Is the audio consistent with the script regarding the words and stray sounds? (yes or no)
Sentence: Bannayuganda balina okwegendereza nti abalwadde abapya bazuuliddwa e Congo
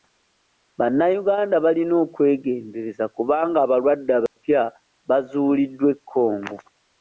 no